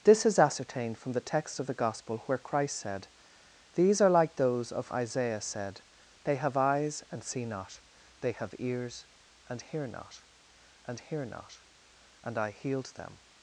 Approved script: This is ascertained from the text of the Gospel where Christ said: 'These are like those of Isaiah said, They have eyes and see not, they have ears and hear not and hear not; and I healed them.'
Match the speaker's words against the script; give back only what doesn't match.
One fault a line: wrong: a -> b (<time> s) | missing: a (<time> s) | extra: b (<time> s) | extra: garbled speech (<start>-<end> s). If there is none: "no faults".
no faults